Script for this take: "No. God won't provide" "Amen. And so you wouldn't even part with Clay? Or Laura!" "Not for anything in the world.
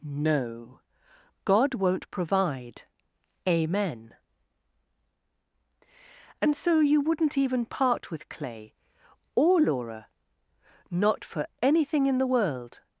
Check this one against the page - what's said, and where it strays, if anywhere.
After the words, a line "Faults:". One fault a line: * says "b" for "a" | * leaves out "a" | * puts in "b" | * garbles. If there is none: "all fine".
"No. God won't provide" "Amen. And so you wouldn't even part with Clay? Or Laura!" "Not for anything in the world.
Faults:
all fine